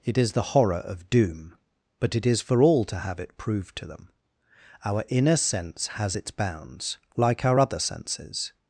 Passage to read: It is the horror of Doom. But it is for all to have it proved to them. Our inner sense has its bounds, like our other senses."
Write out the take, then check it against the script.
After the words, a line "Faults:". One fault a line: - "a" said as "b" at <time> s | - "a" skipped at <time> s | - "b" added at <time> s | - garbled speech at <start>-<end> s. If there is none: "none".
It is the horror of Doom. But it is for all to have it proved to them. Our inner sense has its bounds, like our other senses."
Faults:
none